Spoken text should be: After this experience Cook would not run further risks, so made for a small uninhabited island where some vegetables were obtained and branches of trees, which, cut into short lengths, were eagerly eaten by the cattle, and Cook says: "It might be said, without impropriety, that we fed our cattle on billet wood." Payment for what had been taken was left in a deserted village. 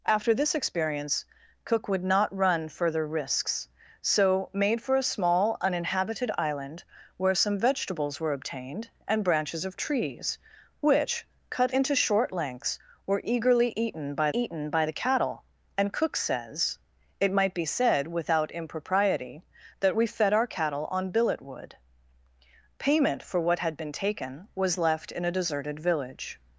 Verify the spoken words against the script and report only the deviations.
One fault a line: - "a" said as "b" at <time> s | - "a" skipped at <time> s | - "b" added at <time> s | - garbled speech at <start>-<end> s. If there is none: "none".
- "eaten by" added at 14.3 s